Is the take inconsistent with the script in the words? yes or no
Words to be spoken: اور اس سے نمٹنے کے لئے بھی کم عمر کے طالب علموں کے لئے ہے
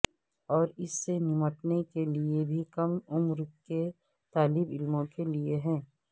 no